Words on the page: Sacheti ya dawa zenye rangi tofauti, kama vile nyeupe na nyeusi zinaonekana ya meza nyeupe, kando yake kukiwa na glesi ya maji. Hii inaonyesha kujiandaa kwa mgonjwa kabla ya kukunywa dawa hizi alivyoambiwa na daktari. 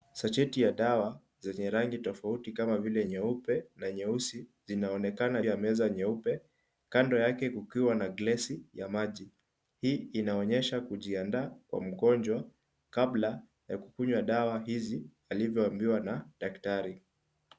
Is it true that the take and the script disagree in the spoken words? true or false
false